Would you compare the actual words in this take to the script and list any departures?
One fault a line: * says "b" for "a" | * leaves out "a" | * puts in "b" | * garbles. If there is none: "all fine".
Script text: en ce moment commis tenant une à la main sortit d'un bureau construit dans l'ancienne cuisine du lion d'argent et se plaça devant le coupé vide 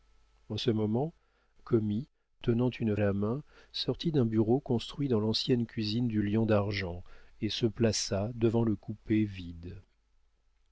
all fine